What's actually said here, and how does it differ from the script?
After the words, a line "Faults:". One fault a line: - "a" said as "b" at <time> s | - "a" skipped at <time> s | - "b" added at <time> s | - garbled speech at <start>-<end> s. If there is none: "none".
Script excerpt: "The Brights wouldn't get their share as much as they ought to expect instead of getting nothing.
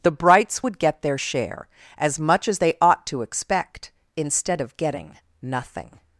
"The Brights would get their share as much as they ought to expect instead of getting nothing.
Faults:
- "wouldn't" said as "would" at 0.6 s